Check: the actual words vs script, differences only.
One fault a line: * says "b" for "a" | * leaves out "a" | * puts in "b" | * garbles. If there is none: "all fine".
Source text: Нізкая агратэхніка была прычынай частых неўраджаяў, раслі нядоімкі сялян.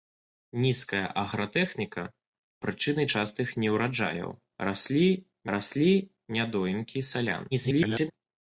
* leaves out "была"
* puts in "раслі"
* garbles